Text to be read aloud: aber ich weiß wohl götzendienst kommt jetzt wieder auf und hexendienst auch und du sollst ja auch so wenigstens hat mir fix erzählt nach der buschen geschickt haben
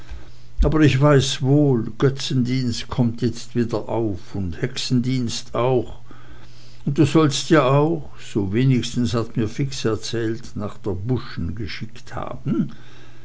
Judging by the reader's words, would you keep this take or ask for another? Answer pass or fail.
pass